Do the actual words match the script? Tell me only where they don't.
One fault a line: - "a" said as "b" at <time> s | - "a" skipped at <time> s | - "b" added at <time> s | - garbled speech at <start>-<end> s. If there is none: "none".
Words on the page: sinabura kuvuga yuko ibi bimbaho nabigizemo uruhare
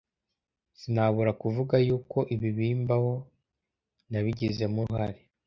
none